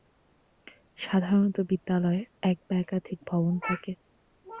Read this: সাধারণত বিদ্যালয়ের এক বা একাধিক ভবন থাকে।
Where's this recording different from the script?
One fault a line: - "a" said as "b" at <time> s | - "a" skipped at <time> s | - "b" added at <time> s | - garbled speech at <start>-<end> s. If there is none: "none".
none